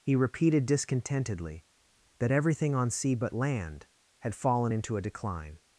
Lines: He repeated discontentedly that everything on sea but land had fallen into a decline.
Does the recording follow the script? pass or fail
pass